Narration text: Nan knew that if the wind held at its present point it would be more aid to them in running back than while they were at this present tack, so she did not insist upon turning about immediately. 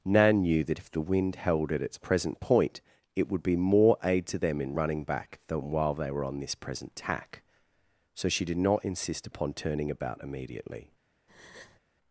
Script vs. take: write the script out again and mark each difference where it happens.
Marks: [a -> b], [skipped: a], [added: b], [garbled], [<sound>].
Nan knew that if the wind held at its present point it would be more aid to them in running back than while they were [at -> on] this present tack, so she did not insist upon turning about immediately. [breath]